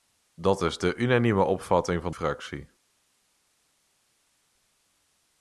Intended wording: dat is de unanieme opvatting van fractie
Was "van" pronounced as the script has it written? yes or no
yes